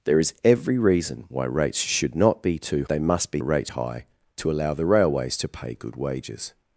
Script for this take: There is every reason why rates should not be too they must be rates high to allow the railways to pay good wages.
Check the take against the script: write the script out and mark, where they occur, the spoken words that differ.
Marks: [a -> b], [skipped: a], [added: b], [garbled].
There is every reason why rates should not be too they must be rates high to allow the railways to pay good wages.